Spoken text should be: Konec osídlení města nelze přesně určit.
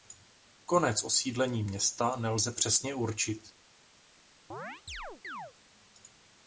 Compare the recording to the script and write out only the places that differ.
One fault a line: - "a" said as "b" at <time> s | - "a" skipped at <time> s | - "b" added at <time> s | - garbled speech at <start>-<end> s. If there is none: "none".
none